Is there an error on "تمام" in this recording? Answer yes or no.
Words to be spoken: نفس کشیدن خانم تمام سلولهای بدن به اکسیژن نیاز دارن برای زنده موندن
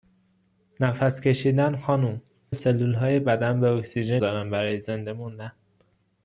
yes